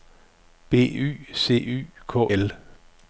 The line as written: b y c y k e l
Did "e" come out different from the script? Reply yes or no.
yes